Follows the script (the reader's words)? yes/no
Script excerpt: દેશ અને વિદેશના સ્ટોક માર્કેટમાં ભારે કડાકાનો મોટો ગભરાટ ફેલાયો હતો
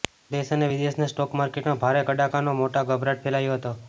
yes